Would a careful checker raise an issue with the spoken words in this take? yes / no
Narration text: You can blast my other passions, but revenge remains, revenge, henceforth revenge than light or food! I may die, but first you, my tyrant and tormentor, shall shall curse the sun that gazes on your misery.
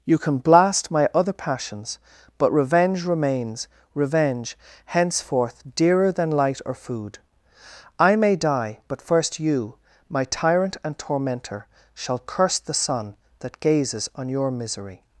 yes